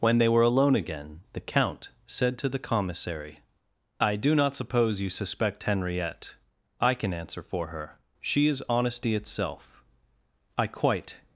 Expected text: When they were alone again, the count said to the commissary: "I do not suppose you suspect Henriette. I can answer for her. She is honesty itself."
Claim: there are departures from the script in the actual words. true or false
true